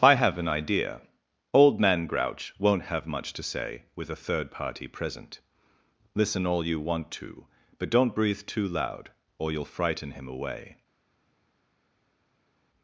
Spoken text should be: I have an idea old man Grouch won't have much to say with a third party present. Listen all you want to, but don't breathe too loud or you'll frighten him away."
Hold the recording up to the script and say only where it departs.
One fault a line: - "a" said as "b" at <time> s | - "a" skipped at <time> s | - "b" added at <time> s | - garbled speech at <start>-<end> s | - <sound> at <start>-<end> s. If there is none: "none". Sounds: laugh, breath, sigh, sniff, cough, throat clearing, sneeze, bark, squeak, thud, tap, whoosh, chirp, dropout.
none